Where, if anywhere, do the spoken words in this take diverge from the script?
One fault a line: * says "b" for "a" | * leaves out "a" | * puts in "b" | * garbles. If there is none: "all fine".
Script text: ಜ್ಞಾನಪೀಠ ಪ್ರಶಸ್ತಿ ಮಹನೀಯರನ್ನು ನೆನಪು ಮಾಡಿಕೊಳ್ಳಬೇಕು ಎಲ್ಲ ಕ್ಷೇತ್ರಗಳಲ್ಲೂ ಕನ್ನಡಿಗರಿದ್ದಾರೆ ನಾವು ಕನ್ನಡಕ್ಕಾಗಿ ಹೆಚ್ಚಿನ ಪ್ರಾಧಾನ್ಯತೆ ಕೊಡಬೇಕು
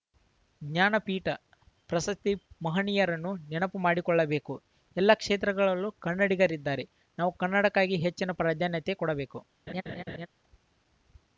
all fine